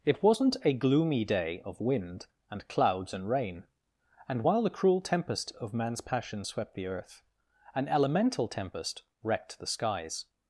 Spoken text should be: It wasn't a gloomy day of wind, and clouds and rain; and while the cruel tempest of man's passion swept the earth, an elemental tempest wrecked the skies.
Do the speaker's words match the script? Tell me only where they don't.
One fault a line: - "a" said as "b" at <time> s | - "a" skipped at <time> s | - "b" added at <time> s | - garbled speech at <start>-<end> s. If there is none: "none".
none